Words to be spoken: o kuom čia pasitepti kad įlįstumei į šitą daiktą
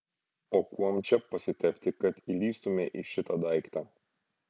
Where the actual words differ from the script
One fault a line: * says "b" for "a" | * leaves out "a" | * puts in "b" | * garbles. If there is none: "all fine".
all fine